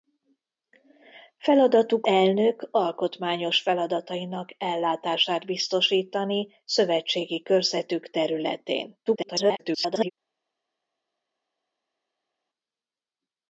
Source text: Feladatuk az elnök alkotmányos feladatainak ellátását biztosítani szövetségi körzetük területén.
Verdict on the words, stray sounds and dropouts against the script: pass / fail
fail